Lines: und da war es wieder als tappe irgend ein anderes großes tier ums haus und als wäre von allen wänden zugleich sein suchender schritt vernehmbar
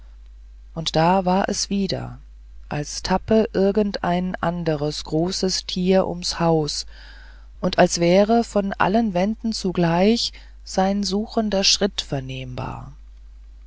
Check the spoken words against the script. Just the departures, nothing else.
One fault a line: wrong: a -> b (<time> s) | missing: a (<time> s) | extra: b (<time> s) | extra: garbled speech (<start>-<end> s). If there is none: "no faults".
no faults